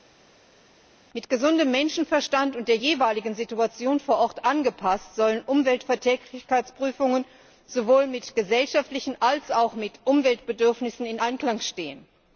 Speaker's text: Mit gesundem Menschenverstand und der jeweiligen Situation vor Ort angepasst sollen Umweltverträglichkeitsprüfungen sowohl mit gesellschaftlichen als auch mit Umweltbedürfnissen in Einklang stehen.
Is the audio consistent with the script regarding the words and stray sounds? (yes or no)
yes